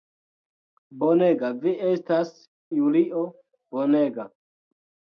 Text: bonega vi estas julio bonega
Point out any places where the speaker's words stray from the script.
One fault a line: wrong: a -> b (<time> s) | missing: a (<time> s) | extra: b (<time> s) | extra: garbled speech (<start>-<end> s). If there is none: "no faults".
no faults